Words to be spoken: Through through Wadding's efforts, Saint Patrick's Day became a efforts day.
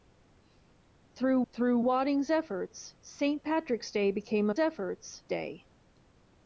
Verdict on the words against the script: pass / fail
pass